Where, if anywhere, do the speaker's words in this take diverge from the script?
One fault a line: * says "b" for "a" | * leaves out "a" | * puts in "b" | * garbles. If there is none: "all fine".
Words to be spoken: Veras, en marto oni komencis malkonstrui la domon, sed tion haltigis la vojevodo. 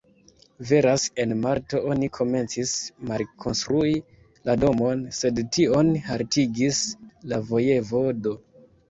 all fine